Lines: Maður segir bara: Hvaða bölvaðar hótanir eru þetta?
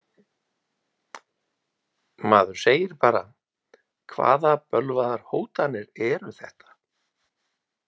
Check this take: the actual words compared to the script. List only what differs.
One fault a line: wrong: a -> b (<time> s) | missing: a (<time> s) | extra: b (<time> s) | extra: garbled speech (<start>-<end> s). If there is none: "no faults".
no faults